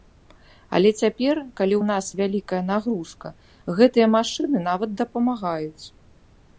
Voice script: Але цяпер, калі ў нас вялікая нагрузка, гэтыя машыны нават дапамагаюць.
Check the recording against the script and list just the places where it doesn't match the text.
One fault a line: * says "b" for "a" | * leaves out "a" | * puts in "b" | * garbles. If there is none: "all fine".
all fine